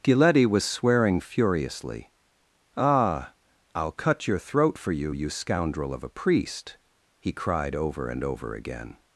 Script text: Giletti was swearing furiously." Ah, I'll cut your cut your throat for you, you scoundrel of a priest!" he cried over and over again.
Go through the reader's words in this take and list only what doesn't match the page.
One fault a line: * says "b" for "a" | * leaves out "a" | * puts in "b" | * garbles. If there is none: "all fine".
* leaves out "cut your"